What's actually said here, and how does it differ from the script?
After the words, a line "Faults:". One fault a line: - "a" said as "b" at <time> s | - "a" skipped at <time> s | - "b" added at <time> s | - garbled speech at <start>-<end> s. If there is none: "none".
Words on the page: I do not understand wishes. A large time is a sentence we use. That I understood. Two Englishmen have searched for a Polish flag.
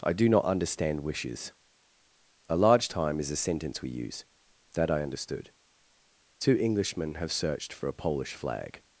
I do not understand wishes. A large time is a sentence we use. That I understood. Two Englishmen have searched for a Polish flag.
Faults:
none